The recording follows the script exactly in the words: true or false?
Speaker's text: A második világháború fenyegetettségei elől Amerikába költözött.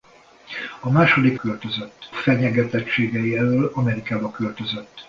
false